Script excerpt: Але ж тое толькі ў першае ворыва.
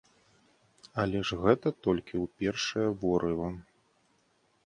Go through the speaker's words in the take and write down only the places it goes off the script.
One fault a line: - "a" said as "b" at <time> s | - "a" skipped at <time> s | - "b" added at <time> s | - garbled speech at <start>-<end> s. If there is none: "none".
- "тое" said as "гэта" at 1.4 s